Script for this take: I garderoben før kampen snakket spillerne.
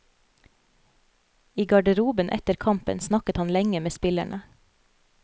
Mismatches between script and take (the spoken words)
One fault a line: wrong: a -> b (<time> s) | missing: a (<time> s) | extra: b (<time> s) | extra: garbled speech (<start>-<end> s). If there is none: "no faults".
wrong: før -> etter (2.3 s)
extra: han lenge med (3.4 s)